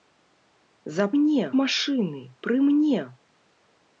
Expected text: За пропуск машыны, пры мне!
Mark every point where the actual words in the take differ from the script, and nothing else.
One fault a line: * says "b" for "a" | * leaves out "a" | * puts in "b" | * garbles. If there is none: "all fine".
* says "мне" for "пропуск"